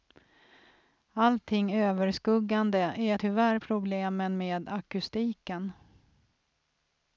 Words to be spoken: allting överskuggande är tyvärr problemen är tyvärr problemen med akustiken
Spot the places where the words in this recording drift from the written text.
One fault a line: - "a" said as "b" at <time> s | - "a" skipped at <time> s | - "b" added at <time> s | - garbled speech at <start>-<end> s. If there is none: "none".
- "är tyvärr problemen" skipped at 4.4 s